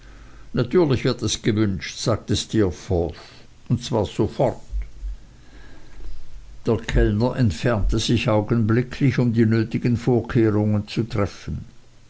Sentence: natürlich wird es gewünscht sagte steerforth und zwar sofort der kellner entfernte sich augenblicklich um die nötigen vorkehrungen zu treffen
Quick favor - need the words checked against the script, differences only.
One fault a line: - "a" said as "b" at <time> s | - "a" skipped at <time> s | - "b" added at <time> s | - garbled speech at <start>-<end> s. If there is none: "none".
none